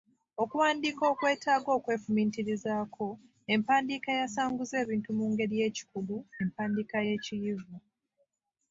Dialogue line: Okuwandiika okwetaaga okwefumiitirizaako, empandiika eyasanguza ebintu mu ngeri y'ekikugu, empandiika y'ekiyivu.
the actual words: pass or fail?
pass